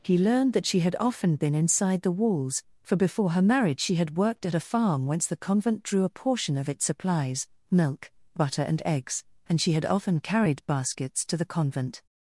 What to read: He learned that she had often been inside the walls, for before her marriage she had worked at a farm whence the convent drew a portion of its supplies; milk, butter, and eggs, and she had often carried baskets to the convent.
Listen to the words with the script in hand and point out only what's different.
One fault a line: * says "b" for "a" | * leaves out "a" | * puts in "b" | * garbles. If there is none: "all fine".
all fine